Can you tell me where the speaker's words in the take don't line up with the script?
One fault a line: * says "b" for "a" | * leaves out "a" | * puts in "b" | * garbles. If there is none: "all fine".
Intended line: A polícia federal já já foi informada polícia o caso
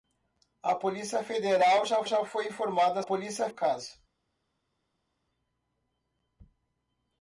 all fine